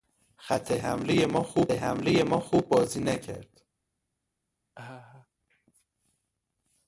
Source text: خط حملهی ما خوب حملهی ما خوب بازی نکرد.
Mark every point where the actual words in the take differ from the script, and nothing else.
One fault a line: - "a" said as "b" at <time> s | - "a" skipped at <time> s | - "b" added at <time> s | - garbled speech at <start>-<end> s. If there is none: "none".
none